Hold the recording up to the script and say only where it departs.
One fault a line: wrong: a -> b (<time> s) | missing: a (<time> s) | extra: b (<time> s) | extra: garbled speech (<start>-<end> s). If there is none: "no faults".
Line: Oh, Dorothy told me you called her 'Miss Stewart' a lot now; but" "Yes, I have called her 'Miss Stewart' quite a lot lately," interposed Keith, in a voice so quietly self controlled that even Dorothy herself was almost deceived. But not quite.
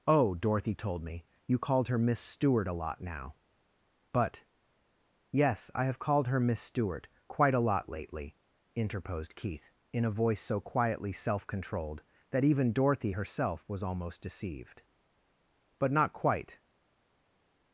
no faults